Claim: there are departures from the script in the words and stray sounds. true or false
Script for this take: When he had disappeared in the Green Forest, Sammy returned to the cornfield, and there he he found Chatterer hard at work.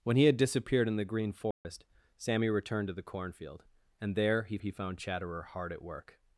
true